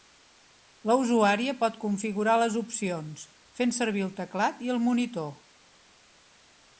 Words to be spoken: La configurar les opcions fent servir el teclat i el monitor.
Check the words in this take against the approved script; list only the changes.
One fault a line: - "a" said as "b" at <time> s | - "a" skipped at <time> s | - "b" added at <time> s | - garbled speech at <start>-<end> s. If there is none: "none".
- "usuària pot" added at 1.0 s